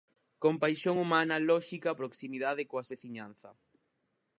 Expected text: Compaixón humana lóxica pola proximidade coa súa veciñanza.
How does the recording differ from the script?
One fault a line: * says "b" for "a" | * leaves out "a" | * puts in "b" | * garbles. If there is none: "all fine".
* leaves out "pola"
* leaves out "súa"